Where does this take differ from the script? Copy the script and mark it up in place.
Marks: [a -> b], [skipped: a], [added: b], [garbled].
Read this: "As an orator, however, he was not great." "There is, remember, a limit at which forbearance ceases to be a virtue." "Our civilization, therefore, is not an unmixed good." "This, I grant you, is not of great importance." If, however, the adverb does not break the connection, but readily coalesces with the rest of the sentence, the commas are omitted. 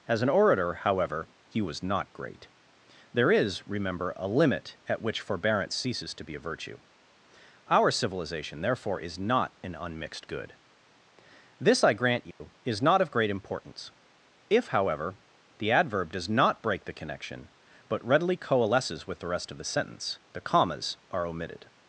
"As an orator, however, he was not great." "There is, remember, a limit at which forbearance ceases to be a virtue." "Our civilization, therefore, is not an unmixed good." "This, I grant you, is not of great importance." If, however, the adverb does not break the connection, but readily coalesces with the rest of the sentence, the commas are omitted.